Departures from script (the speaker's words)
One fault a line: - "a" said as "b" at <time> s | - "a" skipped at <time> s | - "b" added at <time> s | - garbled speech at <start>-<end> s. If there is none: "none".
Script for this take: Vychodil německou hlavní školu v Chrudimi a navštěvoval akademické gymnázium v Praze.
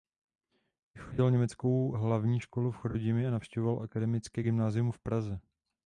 none